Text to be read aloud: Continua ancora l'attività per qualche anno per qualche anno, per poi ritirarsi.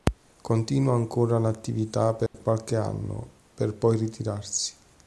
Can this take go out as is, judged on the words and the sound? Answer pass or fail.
fail